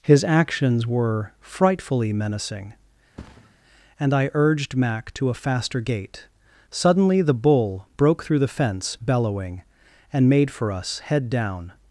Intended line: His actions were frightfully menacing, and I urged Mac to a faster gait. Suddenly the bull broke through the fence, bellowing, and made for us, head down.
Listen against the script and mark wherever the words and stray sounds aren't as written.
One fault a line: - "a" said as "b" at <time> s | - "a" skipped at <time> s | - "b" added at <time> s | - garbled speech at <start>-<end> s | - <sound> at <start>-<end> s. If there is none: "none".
- thud at 3.2-3.5 s